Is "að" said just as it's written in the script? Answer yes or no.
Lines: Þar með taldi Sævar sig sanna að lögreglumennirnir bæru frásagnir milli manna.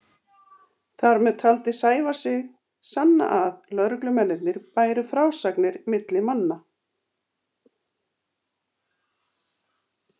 yes